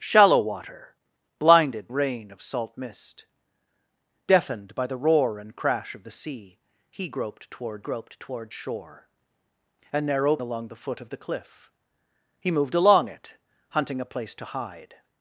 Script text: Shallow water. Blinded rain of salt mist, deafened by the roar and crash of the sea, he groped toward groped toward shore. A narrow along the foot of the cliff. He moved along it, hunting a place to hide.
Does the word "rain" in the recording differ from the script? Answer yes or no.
no